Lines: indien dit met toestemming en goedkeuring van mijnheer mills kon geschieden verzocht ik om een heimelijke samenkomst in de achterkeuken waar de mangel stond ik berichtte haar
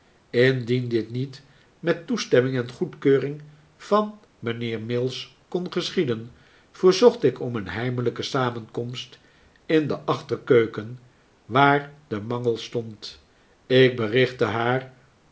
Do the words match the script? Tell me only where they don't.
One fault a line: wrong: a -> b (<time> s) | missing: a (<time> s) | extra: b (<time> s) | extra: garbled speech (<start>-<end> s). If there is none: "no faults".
extra: niet (1.1 s)